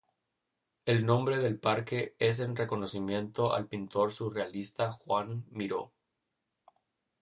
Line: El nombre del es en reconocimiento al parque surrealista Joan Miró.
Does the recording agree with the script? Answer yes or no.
no